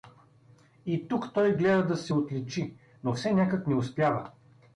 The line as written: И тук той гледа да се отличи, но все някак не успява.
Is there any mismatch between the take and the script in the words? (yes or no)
no